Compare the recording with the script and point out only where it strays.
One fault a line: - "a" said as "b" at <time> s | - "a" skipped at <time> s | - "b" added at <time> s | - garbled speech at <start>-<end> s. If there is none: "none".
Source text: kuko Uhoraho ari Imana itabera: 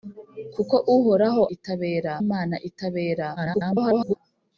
- "ari" said as "itabera" at 1.5 s
- garbled speech at 3.4-4.2 s